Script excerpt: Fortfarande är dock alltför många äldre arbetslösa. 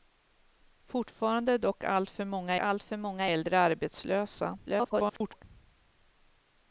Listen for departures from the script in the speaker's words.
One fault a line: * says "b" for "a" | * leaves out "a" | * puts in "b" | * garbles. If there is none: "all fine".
* puts in "alltför många"
* garbles